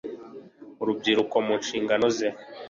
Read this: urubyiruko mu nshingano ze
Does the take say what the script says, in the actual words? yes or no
yes